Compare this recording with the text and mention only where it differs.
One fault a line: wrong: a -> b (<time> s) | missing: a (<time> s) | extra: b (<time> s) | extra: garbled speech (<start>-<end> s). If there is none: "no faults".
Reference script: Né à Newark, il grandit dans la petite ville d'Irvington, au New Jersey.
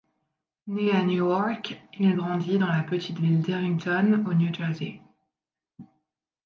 no faults